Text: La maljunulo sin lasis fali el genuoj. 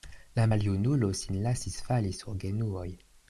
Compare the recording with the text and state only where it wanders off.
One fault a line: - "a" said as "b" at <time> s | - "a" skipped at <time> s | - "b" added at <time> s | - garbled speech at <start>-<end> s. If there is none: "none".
- "el" said as "sur" at 2.2 s